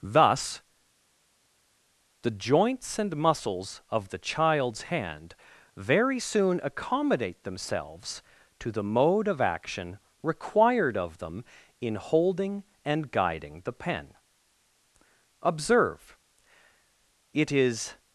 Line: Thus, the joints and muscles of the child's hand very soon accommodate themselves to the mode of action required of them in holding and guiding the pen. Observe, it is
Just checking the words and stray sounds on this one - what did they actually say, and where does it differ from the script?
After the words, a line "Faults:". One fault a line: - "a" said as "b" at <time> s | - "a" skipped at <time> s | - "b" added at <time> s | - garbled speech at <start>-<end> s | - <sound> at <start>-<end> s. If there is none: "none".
Thus, the joints and muscles of the child's hand very soon accommodate themselves to the mode of action required of them in holding and guiding the pen. Observe, it is
Faults:
none